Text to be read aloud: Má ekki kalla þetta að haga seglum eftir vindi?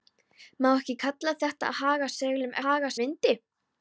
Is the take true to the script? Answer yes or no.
no